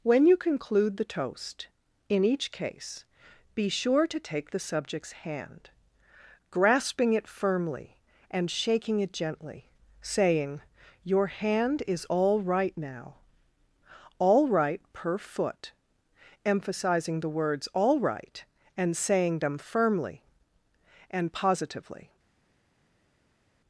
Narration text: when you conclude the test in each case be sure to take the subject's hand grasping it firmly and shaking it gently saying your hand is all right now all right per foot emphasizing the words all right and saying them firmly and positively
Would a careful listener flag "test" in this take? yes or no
yes